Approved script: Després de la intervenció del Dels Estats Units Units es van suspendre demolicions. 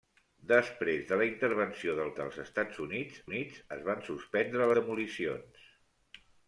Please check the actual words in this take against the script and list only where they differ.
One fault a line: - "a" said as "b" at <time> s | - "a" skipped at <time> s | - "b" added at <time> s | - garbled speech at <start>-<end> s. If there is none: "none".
none